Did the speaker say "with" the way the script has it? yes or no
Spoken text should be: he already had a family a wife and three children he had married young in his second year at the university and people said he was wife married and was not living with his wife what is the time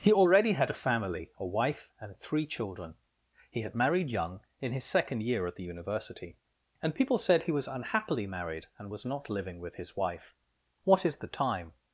yes